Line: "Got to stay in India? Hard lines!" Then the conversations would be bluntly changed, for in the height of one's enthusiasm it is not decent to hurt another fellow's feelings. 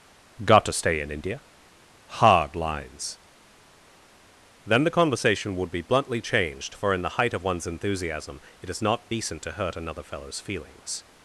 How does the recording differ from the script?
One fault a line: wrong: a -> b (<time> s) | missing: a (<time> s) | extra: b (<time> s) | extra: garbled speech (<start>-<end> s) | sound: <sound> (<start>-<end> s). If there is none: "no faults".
wrong: conversations -> conversation (4.9 s)